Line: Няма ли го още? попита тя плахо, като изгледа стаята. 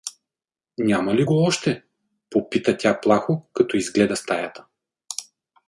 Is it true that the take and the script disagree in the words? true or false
false